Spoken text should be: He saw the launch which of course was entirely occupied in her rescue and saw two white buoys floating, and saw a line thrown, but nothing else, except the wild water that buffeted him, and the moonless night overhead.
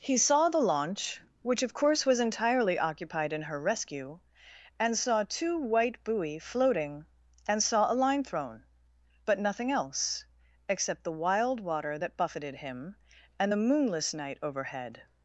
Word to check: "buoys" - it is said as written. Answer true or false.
false